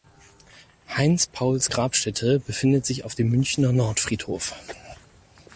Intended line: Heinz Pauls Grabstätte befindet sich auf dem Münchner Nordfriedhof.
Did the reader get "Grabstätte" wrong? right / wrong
right